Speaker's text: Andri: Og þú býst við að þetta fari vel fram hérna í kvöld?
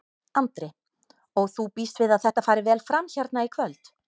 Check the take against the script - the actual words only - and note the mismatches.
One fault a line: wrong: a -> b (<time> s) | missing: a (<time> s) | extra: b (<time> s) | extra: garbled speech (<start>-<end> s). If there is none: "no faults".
no faults